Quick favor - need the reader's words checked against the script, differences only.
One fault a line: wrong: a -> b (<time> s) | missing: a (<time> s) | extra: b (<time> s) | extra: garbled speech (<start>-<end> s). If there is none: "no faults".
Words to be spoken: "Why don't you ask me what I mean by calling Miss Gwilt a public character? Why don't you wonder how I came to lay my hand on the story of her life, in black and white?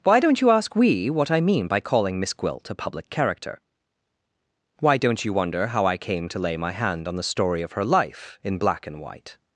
wrong: me -> we (0.8 s)